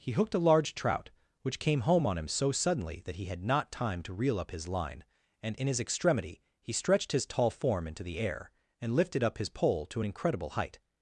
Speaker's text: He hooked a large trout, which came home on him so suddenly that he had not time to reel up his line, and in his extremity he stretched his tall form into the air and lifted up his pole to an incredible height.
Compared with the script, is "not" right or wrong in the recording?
right